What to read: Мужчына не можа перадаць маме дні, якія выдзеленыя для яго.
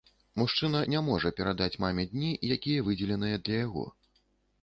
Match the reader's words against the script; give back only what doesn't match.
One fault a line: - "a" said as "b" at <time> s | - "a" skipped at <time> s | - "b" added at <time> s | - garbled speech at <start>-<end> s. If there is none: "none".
none